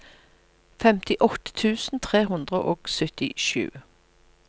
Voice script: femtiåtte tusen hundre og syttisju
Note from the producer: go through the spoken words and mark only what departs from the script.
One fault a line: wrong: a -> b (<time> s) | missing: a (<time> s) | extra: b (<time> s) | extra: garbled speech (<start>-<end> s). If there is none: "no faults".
extra: tre (2.1 s)